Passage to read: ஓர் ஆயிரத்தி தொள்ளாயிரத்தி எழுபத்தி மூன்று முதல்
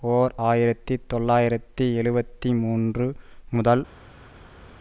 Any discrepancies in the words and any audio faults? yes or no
no